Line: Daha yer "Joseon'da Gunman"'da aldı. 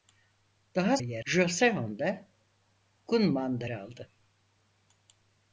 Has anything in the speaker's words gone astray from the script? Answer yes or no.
no